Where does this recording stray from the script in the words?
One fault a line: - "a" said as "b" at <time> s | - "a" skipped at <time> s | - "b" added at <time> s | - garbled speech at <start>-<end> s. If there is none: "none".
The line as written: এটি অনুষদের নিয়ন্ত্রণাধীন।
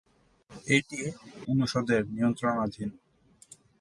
none